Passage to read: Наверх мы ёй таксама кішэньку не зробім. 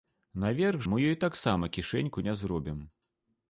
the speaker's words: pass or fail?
pass